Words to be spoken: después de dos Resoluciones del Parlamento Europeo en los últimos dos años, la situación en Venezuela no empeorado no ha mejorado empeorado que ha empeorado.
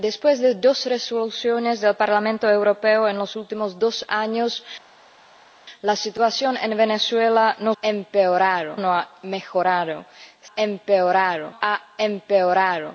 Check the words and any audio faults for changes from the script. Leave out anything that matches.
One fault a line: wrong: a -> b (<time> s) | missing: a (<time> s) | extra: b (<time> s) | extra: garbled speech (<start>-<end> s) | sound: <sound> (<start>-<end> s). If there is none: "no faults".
no faults